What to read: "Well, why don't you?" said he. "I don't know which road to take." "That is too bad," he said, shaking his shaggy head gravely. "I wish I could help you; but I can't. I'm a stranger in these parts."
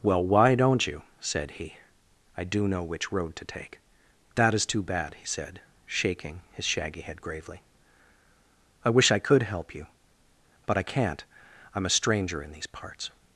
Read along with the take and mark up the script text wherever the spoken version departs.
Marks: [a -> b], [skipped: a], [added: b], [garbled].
"Well, why don't you?" said he. "I [don't -> do] know which road to take." "That is too bad," he said, shaking his shaggy head gravely. "I wish I could help you; but I can't. I'm a stranger in these parts."